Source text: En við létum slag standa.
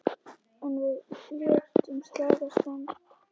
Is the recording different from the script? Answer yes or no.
no